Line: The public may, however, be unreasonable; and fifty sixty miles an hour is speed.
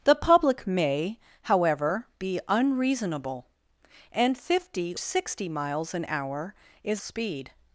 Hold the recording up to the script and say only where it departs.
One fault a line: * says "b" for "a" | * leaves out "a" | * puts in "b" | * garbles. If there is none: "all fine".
all fine